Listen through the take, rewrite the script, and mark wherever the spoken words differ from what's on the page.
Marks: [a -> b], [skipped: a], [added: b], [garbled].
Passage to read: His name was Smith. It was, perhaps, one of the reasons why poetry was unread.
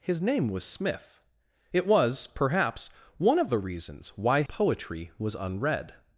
His name was Smith. It was, perhaps, one of the reasons why poetry was unread.